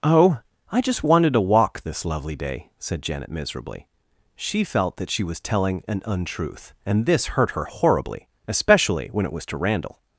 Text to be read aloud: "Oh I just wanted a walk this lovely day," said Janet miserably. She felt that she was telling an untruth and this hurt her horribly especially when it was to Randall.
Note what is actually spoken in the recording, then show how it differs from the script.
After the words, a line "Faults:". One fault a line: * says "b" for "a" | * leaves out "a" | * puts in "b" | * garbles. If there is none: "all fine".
"Oh I just wanted to walk this lovely day," said Janet miserably. She felt that she was telling an untruth and this hurt her horribly especially when it was to Randall.
Faults:
* says "to" for "a"